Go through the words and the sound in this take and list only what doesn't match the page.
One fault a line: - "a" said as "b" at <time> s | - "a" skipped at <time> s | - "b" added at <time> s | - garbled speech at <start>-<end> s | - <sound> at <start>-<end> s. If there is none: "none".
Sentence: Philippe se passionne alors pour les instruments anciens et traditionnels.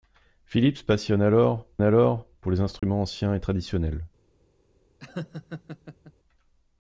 - "alors" added at 1.8 s
- dropout at 2.8-2.8 s
- laugh at 5.0-6.1 s